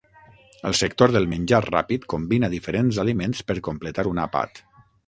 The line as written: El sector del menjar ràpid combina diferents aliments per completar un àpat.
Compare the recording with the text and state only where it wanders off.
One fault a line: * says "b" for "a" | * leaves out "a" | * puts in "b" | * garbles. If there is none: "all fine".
all fine